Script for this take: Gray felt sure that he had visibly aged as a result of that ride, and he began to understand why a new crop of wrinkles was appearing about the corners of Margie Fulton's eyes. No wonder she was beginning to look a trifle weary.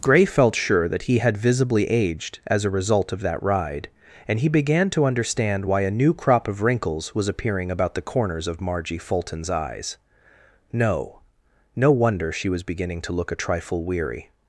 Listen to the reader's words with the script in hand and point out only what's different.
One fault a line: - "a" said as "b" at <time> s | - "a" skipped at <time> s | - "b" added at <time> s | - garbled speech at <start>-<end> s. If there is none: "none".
- "No" added at 11.8 s